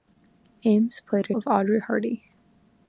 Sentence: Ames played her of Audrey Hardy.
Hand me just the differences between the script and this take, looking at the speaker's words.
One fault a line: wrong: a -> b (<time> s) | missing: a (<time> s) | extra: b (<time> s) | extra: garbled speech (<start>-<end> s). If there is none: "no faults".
no faults